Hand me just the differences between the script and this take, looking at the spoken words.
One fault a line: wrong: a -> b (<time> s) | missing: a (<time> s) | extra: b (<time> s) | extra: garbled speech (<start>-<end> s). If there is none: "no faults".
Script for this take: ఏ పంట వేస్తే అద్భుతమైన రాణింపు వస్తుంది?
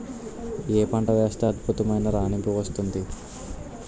no faults